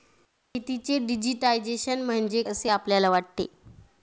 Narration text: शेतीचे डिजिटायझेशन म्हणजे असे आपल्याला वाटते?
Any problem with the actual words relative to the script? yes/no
no